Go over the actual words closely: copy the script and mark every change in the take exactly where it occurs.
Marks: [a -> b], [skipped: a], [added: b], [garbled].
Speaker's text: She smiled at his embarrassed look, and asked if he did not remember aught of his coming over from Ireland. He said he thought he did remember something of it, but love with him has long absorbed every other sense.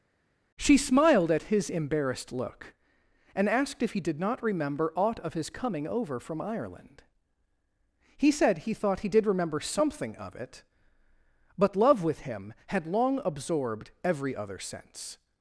She smiled at his embarrassed look, and asked if he did not remember aught of his coming over from Ireland. He said he thought he did remember something of it, but love with him [has -> had] long absorbed every other sense.